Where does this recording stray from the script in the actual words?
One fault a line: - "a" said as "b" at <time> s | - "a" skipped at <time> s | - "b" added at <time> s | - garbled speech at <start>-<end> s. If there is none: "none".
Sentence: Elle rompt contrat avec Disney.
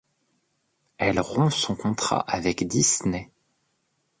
- "son" added at 1.5 s